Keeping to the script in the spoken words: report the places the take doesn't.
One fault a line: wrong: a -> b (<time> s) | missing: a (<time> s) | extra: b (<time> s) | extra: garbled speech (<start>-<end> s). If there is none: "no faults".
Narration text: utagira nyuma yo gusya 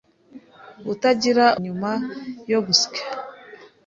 no faults